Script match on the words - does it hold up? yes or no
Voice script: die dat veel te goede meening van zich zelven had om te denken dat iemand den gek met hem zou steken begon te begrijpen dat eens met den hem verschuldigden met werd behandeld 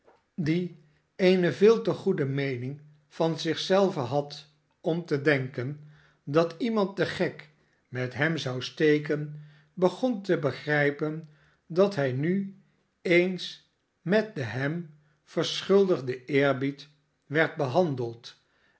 no